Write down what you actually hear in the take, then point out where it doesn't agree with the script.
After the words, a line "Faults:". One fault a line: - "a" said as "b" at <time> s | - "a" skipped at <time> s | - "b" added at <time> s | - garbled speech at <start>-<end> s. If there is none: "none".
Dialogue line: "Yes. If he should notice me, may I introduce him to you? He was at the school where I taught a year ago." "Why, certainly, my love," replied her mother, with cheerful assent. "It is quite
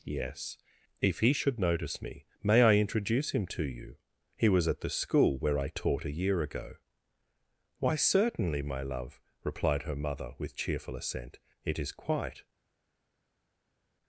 "Yes. If he should notice me, may I introduce him to you? He was at the school where I taught a year ago." "Why, certainly, my love," replied her mother, with cheerful assent. "It is quite
Faults:
none